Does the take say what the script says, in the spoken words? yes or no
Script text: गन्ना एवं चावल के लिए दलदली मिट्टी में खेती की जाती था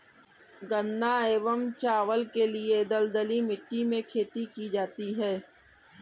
no